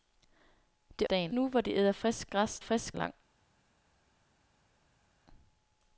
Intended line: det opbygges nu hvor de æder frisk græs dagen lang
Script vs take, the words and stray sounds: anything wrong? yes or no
yes